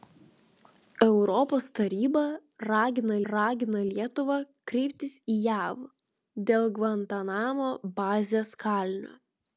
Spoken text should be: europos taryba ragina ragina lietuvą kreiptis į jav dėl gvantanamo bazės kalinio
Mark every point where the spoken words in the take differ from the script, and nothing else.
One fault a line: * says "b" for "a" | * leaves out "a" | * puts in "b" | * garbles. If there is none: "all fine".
all fine